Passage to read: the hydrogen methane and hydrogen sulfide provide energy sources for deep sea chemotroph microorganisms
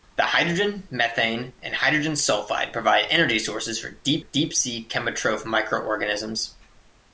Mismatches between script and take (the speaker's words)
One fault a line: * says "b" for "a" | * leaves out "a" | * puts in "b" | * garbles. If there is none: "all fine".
* puts in "deep"